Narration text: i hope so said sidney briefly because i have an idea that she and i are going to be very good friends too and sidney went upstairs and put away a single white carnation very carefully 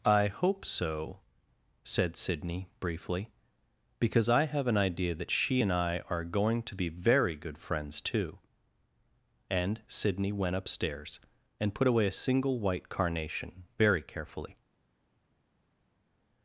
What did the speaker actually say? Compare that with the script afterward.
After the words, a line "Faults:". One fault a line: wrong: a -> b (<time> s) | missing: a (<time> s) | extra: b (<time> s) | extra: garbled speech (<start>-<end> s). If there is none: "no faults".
i hope so said sidney briefly because i have an idea that she and i are going to be very good friends too and sidney went upstairs and put away a single white carnation very carefully
Faults:
no faults